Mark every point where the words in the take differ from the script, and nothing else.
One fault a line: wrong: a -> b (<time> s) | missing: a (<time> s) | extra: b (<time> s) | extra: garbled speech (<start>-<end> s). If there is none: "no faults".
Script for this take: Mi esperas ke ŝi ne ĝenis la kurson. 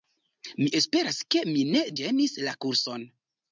wrong: ŝi -> mi (1.5 s)